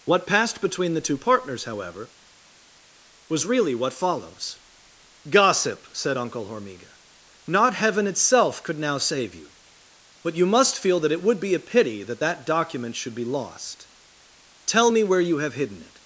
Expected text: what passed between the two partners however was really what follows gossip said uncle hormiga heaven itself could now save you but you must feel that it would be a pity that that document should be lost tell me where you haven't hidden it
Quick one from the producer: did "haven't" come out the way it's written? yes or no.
no